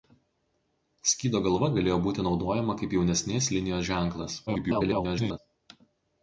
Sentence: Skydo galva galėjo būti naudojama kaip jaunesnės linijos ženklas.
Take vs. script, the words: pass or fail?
fail